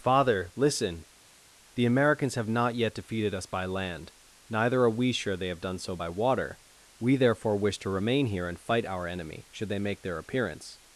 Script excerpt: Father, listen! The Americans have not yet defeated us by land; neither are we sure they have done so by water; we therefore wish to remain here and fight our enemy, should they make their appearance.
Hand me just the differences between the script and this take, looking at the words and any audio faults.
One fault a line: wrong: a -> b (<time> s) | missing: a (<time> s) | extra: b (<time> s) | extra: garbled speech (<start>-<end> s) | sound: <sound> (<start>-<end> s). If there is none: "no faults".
no faults